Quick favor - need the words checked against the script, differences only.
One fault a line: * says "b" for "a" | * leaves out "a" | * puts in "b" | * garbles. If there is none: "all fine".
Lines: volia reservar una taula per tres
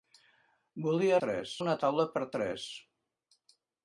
* says "tres" for "reservar"